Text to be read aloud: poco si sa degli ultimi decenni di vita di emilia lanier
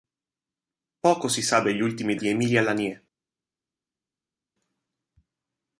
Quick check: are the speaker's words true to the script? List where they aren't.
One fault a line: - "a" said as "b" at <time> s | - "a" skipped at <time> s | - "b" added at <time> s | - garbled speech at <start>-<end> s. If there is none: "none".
- "decenni di vita" skipped at 2.1 s